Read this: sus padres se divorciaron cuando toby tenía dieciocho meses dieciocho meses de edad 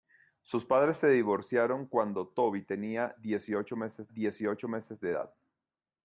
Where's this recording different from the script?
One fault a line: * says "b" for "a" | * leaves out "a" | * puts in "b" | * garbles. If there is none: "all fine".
all fine